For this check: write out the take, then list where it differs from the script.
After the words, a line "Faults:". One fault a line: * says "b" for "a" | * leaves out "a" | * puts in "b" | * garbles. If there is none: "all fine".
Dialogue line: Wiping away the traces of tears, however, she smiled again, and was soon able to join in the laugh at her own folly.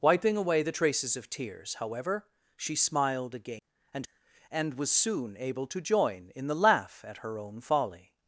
Wiping away the traces of tears, however, she smiled again, and and was soon able to join in the laugh at her own folly.
Faults:
* puts in "and"